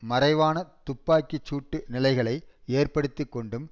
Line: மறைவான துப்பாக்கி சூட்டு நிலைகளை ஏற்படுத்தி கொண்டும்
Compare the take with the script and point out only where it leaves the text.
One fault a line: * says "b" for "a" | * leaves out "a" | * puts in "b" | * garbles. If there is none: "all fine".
all fine